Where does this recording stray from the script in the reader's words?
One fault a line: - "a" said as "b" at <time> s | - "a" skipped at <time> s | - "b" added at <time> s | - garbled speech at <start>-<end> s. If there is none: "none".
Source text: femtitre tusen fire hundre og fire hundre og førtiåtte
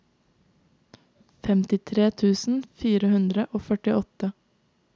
- "fire hundre og" skipped at 3.7 s